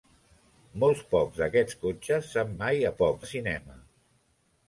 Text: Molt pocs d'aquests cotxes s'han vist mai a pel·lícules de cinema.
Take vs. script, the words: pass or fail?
fail